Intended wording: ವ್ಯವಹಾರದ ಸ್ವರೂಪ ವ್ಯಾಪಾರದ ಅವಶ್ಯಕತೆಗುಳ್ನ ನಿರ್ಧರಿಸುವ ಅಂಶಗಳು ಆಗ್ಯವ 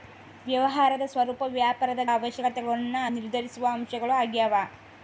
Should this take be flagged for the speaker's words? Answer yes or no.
no